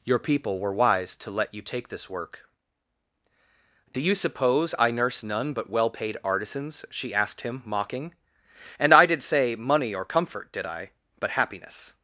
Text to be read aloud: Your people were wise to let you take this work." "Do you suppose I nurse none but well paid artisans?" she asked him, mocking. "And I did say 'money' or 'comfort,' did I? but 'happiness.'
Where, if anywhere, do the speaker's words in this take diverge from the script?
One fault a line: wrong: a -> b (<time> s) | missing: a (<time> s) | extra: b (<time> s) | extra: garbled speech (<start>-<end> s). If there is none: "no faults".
no faults